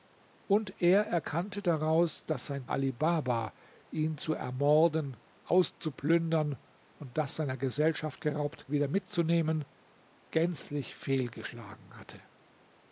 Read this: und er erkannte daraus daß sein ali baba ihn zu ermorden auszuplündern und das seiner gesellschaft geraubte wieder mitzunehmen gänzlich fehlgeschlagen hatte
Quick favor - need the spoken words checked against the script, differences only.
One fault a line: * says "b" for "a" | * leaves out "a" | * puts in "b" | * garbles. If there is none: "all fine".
all fine